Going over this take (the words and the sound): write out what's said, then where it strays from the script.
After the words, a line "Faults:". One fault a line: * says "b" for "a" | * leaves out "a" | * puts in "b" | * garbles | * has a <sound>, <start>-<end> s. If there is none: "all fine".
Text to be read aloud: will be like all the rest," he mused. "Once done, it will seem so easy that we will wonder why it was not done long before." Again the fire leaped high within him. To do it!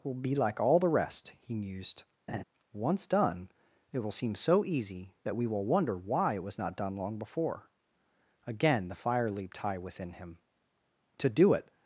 will be like all the rest," he mused. "Once done, it will seem so easy that we will wonder why it was not done long before." Again the fire leaped high within him. To do it!
Faults:
* has a laugh, 2.3-2.4 s